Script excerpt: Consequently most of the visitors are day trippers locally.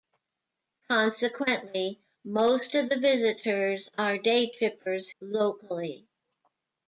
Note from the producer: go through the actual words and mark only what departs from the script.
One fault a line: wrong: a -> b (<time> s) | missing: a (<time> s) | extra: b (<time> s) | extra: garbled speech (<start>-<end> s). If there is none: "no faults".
no faults